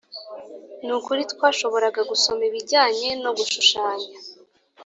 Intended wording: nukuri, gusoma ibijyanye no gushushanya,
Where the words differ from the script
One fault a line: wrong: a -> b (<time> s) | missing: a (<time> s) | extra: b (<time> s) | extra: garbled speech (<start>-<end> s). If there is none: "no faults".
extra: twashoboraga (1.3 s)